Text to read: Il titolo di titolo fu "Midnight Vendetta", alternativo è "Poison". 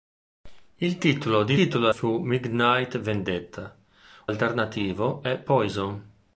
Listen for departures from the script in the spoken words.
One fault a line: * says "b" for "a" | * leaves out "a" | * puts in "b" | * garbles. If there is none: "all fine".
all fine